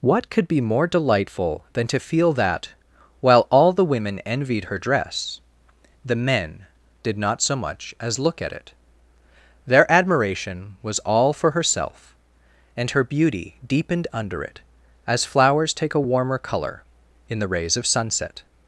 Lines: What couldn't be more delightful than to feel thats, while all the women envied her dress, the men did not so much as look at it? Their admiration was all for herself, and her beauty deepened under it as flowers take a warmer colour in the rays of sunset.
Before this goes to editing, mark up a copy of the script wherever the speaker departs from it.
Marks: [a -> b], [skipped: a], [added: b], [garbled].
What [couldn't -> could] be more delightful than to feel [thats, -> that] while all the women envied her dress, the men did not so much as look at it? Their admiration was all for herself, and her beauty deepened under it as flowers take a warmer colour in the rays of sunset.